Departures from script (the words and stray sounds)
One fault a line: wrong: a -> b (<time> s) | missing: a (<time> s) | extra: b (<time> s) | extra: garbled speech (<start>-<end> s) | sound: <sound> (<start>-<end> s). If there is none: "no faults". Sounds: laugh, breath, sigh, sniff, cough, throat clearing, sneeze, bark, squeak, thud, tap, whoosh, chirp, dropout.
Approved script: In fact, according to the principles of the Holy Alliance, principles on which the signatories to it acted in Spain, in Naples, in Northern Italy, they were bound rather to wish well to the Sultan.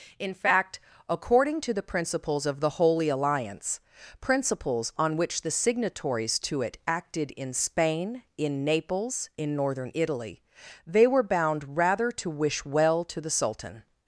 no faults